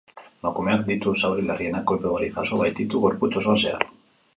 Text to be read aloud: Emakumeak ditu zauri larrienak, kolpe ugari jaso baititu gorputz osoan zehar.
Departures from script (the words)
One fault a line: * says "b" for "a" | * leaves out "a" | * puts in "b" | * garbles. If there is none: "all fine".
all fine